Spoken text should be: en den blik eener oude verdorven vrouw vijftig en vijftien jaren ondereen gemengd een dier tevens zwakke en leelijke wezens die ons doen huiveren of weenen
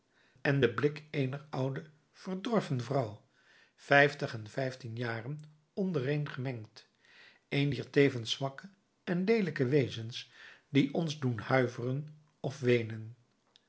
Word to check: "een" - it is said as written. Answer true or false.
true